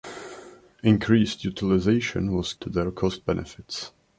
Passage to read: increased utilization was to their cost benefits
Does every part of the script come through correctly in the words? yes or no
yes